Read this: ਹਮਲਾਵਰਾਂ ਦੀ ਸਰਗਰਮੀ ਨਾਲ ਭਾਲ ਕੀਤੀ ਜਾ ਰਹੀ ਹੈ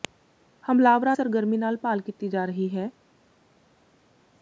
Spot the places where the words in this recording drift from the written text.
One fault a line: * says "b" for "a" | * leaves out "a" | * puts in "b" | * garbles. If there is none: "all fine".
* leaves out "ਦੀ"